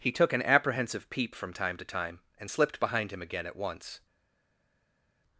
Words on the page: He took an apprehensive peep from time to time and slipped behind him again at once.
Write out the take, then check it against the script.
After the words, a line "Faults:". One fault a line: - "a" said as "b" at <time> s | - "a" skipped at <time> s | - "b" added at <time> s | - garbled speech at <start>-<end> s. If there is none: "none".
He took an apprehensive peep from time to time and slipped behind him again at once.
Faults:
none